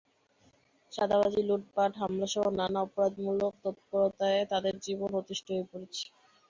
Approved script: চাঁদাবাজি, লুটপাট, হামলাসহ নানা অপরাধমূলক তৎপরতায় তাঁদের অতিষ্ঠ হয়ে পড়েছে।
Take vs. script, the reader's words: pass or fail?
fail